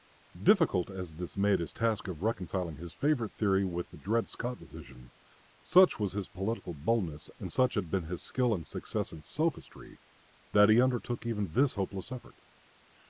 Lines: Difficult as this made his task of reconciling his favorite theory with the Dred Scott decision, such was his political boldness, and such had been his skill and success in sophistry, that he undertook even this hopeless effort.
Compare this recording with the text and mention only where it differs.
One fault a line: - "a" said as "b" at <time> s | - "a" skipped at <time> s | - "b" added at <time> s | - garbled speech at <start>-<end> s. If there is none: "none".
none